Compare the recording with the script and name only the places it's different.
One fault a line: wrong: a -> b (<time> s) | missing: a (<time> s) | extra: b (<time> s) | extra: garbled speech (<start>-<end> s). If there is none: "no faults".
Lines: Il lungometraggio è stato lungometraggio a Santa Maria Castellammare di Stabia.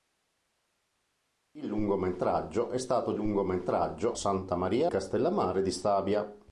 no faults